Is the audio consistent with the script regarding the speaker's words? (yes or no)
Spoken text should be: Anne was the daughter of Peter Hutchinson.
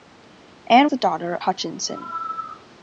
no